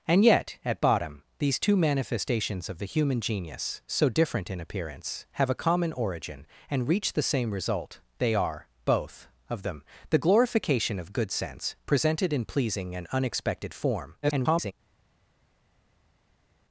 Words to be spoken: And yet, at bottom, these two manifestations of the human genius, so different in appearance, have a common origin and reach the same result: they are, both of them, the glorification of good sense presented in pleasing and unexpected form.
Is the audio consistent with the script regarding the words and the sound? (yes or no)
no